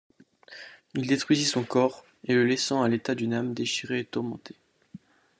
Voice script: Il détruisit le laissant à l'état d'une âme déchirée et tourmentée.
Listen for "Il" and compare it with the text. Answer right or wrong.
right